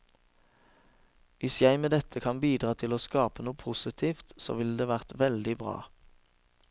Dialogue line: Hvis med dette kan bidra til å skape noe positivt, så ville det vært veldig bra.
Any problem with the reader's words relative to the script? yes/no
yes